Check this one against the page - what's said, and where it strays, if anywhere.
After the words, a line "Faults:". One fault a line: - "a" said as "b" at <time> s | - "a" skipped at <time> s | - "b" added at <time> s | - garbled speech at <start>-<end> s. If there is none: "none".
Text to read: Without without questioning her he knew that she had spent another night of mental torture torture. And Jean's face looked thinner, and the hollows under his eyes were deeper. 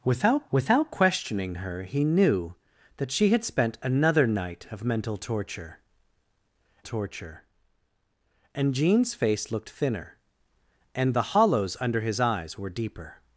Without without questioning her he knew that she had spent another night of mental torture torture. And Jean's face looked thinner, and the hollows under his eyes were deeper.
Faults:
none